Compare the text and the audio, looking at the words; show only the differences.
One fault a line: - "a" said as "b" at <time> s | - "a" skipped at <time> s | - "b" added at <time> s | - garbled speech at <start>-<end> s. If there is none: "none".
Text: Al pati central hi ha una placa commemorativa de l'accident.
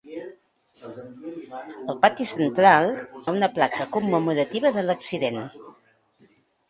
- "hi" skipped at 2.9 s